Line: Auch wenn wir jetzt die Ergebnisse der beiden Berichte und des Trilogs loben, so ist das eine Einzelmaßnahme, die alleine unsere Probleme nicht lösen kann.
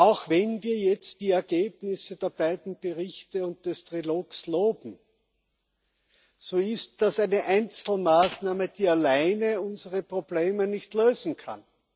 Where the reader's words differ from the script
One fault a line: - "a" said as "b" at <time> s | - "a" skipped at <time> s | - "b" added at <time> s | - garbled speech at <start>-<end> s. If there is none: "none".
none